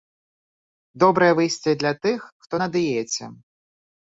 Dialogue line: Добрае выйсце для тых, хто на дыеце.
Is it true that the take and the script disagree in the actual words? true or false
false